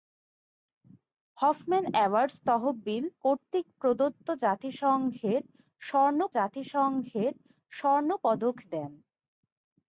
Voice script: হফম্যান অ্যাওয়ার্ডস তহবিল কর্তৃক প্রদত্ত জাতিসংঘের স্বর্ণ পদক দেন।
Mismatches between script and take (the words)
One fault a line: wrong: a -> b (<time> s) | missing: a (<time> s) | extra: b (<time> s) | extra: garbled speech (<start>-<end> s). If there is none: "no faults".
extra: জাতিসংঘের স্বর্ণ (6.4 s)